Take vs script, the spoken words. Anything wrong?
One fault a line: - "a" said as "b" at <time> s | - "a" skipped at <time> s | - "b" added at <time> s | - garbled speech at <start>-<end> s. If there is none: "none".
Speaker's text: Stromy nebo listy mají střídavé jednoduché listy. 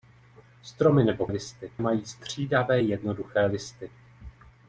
none